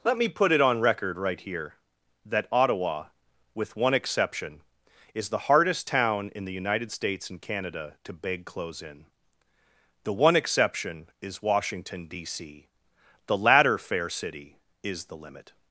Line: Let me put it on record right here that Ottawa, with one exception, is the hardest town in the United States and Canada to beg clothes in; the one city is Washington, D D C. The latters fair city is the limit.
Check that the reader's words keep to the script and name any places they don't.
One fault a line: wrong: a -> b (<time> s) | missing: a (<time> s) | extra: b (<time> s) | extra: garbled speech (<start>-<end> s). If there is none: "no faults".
wrong: city -> exception (10.4 s)
missing: D (12.3 s)
wrong: latters -> latter (13.4 s)